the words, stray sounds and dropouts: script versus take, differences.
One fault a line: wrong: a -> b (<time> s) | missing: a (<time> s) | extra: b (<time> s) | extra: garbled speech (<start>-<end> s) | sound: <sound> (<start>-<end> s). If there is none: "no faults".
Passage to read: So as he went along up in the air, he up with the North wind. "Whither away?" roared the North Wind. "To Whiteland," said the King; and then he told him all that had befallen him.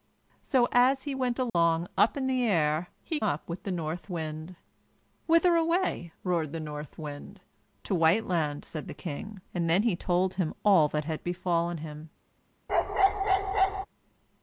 sound: dropout (1.5-1.5 s)
sound: bark (12.7-13.9 s)